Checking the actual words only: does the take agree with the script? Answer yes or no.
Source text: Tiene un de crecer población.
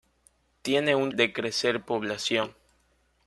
yes